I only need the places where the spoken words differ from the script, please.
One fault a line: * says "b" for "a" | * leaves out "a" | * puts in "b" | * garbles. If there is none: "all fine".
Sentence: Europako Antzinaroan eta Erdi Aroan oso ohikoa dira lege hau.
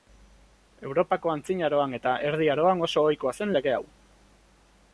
* says "zen" for "dira"